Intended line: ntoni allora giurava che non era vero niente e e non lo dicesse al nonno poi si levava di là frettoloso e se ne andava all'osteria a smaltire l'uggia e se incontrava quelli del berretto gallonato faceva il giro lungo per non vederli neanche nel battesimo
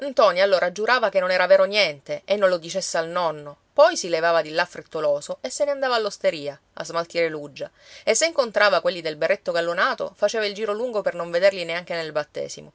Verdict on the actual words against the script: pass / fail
fail